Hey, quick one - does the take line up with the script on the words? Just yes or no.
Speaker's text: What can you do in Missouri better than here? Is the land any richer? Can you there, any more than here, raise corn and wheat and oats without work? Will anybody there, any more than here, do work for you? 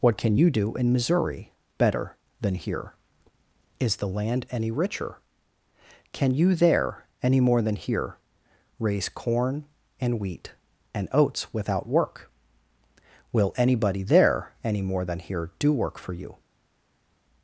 yes